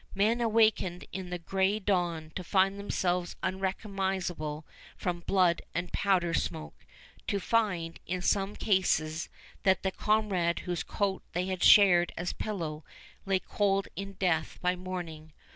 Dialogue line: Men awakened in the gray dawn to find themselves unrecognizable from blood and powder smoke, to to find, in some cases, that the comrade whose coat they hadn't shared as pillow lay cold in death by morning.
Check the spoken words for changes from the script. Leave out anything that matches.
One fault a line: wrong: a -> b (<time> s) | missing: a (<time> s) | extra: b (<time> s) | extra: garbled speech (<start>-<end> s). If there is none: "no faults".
missing: to (7.4 s)
wrong: hadn't -> had (11.5 s)